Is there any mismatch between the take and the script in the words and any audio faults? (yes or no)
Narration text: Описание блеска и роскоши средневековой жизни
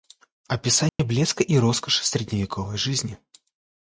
yes